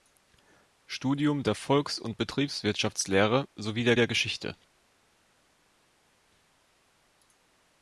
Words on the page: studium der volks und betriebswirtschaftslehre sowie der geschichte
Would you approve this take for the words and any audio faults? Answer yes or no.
no